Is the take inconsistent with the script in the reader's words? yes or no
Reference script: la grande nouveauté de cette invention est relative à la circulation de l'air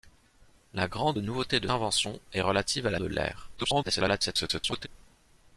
yes